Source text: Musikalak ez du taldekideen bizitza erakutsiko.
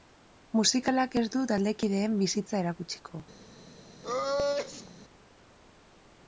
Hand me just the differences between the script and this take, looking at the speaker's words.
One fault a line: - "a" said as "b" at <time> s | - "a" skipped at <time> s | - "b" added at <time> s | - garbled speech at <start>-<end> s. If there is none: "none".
none